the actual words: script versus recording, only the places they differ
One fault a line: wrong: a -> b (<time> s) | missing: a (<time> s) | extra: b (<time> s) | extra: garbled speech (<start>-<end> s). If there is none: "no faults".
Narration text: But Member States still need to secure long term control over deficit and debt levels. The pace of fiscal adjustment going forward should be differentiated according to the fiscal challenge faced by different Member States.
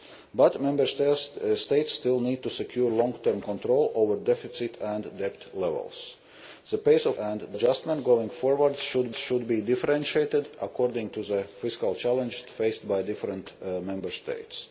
wrong: fiscal -> and (7.2 s)
extra: should (9.1 s)